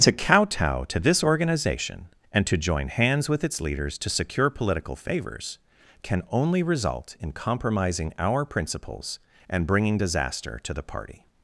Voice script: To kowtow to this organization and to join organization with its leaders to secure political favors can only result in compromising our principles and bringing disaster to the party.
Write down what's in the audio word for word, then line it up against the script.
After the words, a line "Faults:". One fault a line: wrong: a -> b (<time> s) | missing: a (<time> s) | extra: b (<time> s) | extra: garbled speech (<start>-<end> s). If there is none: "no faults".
To kowtow to this organization and to join hands with its leaders to secure political favors can only result in compromising our principles and bringing disaster to the party.
Faults:
wrong: organization -> hands (2.9 s)